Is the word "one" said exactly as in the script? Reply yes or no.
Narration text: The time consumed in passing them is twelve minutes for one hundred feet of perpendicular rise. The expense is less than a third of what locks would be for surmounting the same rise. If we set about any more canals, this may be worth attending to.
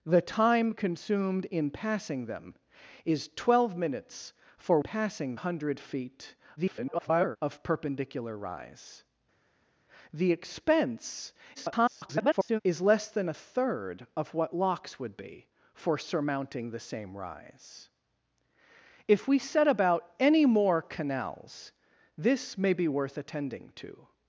no